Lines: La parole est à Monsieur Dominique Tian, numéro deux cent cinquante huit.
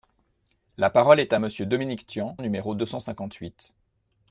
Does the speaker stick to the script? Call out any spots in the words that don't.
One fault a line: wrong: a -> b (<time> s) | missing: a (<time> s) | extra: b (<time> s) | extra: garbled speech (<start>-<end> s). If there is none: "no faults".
no faults